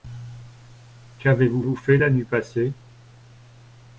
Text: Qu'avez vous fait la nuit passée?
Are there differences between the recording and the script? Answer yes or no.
yes